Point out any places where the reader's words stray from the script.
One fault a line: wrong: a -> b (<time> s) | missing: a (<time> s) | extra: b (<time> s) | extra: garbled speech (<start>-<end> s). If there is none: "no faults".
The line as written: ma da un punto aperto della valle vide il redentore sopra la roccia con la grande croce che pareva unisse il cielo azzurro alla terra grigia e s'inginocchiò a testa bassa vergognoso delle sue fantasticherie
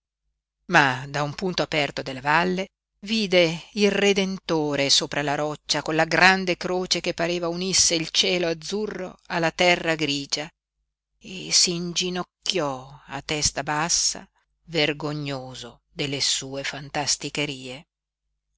no faults